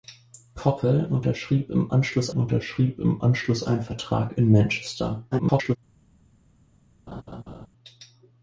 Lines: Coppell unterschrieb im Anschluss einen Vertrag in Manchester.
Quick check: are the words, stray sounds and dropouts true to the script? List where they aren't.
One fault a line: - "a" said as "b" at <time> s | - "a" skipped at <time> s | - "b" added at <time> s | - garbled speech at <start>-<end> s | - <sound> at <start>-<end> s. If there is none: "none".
- "unterschrieb im Anschluss" added at 2.3 s
- garbled speech at 5.3-5.8 s
- laugh at 7.1-7.7 s